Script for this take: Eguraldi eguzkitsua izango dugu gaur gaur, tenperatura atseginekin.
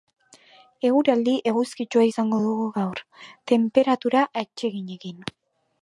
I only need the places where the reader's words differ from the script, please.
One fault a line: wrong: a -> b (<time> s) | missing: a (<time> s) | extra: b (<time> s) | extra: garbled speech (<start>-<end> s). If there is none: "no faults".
missing: gaur (3.0 s)